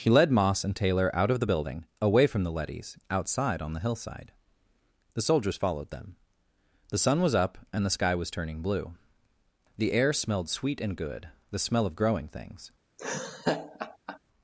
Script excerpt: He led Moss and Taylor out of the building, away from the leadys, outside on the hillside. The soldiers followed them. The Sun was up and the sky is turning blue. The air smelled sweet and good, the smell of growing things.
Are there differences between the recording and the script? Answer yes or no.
yes